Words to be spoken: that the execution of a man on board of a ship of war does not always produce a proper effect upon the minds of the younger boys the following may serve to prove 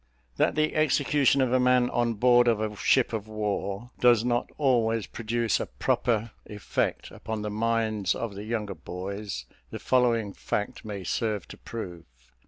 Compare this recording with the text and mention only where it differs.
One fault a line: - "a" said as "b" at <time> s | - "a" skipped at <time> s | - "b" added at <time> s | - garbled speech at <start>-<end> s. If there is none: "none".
- "fact" added at 10.3 s